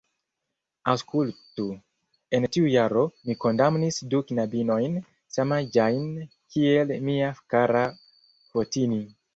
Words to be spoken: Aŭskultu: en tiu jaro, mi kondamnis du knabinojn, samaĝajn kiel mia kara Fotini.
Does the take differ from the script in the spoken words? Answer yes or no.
no